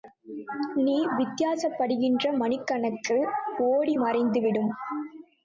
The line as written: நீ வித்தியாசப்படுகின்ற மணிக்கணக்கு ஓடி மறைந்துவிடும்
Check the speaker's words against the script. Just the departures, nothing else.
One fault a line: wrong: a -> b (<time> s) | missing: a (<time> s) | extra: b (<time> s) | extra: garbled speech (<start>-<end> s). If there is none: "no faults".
no faults